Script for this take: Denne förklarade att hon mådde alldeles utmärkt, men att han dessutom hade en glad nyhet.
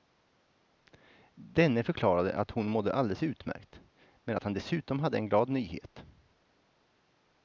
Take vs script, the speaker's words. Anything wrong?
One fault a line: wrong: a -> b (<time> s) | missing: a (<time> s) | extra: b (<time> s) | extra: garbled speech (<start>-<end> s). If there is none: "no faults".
no faults